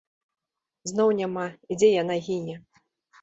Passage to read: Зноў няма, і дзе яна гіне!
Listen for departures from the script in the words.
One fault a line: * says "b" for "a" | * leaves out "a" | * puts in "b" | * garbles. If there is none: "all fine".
all fine